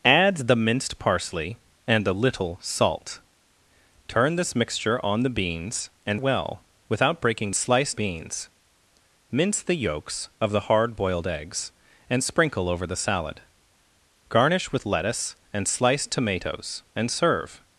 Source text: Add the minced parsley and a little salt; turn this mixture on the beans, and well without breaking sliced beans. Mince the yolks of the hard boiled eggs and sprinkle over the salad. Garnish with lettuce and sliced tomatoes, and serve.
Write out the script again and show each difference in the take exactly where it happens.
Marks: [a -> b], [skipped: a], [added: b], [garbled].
Add the minced parsley and a little salt; turn this mixture on the beans, and well without breaking sliced beans. Mince the yolks of the hard boiled eggs and sprinkle over the salad. Garnish with lettuce and sliced tomatoes, and serve.